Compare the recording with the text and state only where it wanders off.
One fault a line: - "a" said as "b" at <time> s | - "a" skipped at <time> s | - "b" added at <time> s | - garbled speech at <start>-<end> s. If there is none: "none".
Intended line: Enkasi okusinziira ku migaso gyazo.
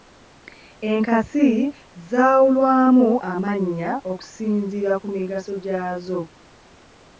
- "zaawulwamu amannya" added at 2.1 s